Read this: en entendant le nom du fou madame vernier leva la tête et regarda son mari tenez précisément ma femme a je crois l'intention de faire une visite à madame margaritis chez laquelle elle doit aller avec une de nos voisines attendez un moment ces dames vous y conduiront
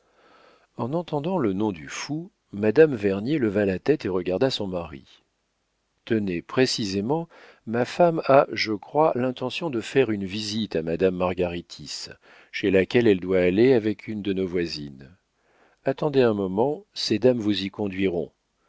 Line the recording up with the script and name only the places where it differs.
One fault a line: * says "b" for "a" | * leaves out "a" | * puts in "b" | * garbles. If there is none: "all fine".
all fine